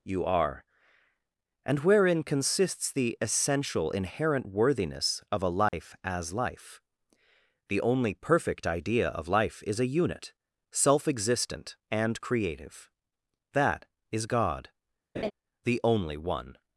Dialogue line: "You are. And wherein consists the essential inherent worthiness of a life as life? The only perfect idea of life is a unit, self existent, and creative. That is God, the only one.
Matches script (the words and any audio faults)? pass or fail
fail